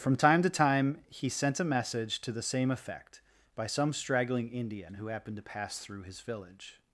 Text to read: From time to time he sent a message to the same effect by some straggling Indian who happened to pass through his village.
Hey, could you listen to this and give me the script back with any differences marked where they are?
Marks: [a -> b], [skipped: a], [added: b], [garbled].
From time to time he sent a message to the same effect by some straggling Indian who happened to pass through his village.